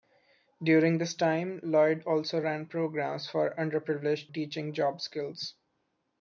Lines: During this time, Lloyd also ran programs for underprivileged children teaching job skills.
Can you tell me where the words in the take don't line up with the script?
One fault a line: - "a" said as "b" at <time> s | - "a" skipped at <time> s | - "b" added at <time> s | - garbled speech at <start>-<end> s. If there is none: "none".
- "children" skipped at 4.3 s